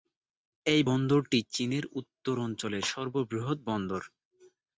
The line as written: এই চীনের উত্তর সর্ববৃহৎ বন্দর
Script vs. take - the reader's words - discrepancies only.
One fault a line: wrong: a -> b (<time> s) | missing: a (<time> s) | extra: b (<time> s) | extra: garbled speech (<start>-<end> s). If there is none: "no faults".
extra: বন্দরটি (0.9 s)
extra: অঞ্চলের (2.4 s)